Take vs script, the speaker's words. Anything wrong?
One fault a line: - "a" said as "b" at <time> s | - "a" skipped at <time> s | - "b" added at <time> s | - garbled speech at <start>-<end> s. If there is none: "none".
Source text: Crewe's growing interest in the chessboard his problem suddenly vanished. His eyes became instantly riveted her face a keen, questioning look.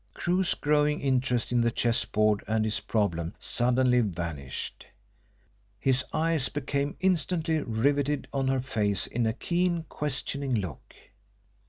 - "and" added at 2.5 s
- "on" added at 8.3 s
- "in" added at 9.1 s